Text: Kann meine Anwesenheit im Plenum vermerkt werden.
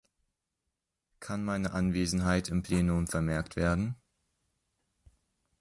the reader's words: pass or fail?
pass